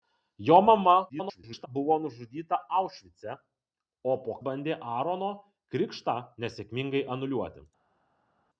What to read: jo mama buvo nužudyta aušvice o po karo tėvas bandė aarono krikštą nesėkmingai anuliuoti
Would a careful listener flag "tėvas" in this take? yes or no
yes